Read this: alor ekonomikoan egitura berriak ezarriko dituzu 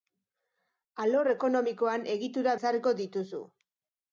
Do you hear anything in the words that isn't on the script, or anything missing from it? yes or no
yes